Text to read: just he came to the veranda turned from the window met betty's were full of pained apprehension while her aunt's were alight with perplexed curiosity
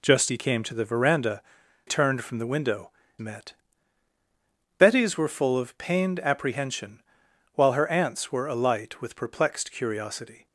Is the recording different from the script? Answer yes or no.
no